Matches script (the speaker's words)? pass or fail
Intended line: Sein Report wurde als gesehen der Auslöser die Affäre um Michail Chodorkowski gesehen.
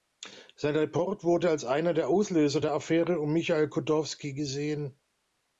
fail